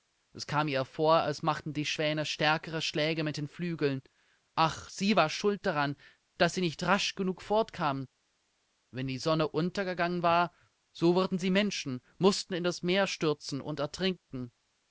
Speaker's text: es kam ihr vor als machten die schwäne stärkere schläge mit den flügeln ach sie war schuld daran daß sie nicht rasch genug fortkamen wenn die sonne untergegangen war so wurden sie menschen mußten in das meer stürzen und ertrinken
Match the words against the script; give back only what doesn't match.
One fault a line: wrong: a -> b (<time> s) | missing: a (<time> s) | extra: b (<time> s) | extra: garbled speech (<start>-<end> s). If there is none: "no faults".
no faults